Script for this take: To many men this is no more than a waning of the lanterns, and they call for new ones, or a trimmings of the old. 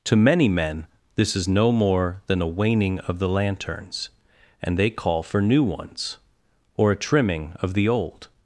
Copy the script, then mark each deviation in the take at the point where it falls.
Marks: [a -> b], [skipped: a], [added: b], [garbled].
To many men this is no more than a waning of the lanterns, and they call for new ones, or a [trimmings -> trimming] of the old.